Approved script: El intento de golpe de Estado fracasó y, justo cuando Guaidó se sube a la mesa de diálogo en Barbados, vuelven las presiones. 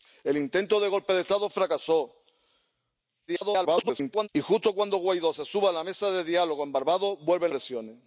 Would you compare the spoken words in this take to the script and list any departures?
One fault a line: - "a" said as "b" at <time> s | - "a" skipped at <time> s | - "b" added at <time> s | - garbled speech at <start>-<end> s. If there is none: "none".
- garbled speech at 3.3-4.3 s
- "las" skipped at 7.5 s